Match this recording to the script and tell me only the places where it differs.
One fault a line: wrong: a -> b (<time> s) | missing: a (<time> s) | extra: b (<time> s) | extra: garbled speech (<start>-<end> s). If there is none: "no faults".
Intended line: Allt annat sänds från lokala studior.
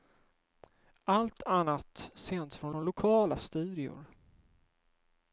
extra: från (2.7 s)